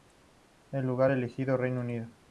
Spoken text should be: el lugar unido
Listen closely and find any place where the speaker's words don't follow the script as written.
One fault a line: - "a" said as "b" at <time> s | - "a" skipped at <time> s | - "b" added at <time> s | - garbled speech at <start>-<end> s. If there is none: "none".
- "elegido reino" added at 1.1 s